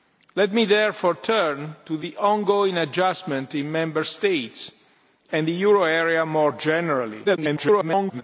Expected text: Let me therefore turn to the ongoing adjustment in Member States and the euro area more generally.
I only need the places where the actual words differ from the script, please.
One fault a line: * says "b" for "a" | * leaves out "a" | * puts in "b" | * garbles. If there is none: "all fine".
* garbles